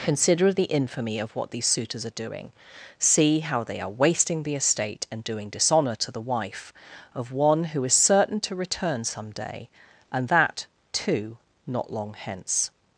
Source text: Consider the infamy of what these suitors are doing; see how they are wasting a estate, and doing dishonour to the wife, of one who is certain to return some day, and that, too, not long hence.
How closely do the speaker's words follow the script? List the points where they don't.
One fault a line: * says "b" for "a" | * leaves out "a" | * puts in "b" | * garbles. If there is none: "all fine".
* says "the" for "a"